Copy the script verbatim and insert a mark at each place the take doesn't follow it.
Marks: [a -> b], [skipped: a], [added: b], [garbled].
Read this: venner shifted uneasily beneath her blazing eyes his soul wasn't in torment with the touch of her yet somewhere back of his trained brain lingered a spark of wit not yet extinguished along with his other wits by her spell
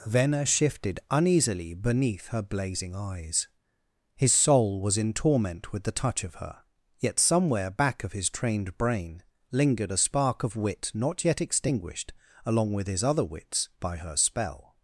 venner shifted uneasily beneath her blazing eyes his soul [wasn't -> was] in torment with the touch of her yet somewhere back of his trained brain lingered a spark of wit not yet extinguished along with his other wits by her spell